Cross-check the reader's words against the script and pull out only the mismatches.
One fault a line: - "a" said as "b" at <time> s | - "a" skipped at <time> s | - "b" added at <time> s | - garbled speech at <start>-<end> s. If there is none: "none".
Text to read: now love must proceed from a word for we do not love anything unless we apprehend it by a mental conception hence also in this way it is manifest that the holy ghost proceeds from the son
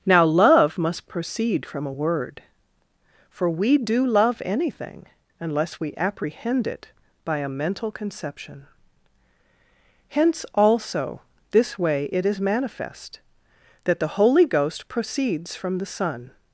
- "not" skipped at 4.1 s
- "in" skipped at 11.2 s